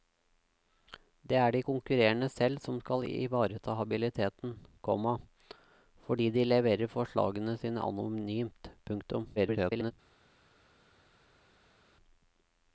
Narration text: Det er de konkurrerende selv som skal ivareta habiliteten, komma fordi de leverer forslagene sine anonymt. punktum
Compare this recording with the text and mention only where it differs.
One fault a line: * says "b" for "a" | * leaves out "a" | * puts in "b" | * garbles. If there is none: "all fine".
* garbles